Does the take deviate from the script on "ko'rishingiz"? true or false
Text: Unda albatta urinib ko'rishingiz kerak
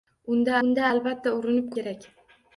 true